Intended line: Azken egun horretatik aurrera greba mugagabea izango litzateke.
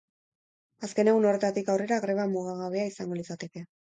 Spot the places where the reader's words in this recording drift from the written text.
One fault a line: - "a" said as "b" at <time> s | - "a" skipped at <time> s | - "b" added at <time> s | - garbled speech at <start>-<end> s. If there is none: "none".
none